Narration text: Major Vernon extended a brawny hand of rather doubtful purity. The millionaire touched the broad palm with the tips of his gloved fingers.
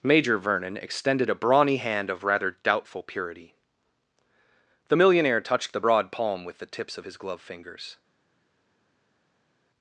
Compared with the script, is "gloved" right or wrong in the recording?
wrong